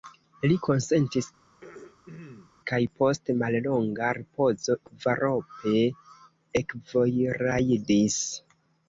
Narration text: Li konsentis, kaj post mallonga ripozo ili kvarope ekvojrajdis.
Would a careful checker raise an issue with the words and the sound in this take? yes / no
yes